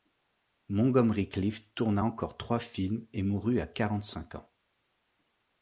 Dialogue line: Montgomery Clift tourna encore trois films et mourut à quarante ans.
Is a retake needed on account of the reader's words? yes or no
yes